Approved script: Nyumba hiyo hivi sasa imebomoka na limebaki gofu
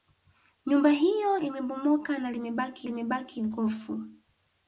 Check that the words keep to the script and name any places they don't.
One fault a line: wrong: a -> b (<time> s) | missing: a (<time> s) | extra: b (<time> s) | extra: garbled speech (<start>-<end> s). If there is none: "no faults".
missing: hivi sasa (1.4 s)
extra: limebaki (2.8 s)